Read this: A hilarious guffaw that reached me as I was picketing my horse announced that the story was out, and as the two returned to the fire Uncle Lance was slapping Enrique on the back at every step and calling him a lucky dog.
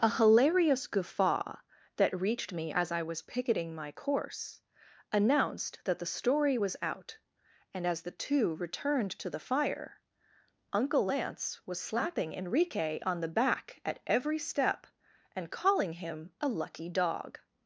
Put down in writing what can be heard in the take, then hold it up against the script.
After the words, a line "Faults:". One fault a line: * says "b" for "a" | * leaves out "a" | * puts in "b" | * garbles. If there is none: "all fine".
A hilarious guffaw that reached me as I was picketing my course announced that the story was out, and as the two returned to the fire Uncle Lance was slapping Enrique on the back at every step and calling him a lucky dog.
Faults:
* says "course" for "horse"